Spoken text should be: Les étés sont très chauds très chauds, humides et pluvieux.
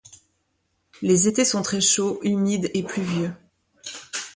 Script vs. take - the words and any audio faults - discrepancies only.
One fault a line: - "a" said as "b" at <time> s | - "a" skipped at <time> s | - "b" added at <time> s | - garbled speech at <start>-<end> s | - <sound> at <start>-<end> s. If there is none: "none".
- "très chauds" skipped at 2.2 s